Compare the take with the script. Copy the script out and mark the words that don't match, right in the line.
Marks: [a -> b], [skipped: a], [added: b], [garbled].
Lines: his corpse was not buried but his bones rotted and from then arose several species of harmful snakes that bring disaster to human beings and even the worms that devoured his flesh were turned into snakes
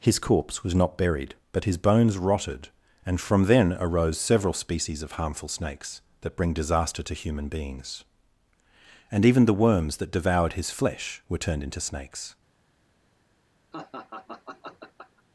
his corpse was not buried but his bones rotted and from then arose several species of harmful snakes that bring disaster to human beings and even the worms that devoured his flesh were turned into snakes